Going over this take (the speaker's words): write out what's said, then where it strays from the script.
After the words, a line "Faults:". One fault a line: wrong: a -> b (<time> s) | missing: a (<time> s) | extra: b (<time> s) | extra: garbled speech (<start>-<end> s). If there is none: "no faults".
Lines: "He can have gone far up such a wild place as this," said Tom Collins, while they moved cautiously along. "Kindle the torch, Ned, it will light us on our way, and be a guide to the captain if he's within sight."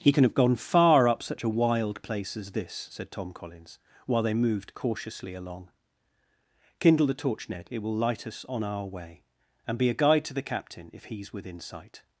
"He can have gone far up such a wild place as this," said Tom Collins, while they moved cautiously along. "Kindle the torch, Ned, it will light us on our way, and be a guide to the captain if he's within sight."
Faults:
no faults